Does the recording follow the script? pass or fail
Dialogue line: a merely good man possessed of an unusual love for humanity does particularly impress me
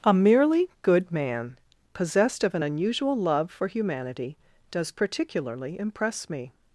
pass